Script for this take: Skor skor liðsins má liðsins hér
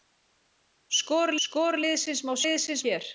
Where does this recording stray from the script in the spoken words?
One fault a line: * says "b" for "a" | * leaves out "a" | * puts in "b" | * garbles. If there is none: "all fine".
all fine